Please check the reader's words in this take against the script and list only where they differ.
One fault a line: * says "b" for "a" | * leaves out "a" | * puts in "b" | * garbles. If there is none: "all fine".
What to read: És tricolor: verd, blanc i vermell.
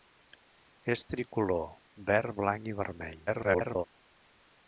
* garbles